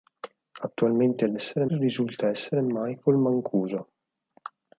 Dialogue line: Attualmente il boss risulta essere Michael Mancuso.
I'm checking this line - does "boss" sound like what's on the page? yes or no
no